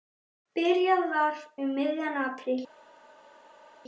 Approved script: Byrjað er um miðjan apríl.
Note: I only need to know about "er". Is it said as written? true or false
false